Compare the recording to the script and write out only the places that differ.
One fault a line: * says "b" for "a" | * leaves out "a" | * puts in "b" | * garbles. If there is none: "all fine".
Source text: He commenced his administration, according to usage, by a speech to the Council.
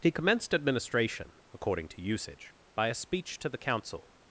* leaves out "his"